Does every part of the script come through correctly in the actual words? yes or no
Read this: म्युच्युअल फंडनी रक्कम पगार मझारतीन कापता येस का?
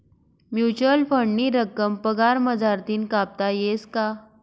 yes